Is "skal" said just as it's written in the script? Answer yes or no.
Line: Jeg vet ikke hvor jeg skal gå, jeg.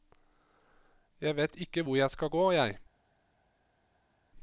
yes